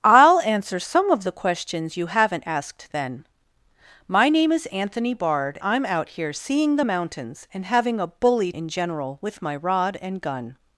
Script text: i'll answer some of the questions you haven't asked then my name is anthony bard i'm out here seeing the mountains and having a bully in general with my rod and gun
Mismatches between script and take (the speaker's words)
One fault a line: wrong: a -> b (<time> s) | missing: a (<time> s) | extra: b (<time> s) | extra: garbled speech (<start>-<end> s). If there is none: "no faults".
no faults